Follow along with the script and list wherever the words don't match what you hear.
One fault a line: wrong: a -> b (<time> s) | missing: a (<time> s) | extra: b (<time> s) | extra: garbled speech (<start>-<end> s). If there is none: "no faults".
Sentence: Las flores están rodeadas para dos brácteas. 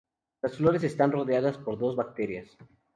wrong: para -> por (1.6 s)